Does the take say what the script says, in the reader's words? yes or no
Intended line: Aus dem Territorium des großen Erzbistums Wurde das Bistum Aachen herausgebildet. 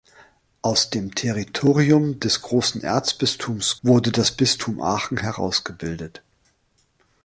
yes